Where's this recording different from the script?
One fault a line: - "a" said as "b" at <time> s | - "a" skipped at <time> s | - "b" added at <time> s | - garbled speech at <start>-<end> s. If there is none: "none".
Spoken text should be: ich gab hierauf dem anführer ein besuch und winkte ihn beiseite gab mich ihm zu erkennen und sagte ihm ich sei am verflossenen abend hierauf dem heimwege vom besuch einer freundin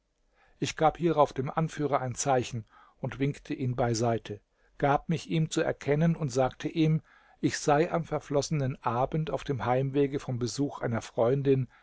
- "besuch" said as "zeichen" at 2.1 s
- "hierauf" said as "auf" at 9.3 s